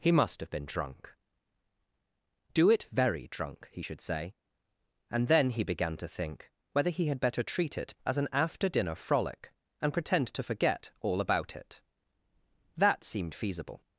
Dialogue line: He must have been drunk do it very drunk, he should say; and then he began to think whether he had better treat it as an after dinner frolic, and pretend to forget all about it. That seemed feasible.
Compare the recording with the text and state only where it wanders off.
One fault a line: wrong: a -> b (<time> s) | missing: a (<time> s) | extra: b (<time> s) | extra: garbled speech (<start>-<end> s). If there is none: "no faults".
no faults